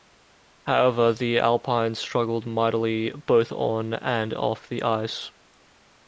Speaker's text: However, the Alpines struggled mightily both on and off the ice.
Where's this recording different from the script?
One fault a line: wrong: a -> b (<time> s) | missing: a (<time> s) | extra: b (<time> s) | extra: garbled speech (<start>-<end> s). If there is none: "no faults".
no faults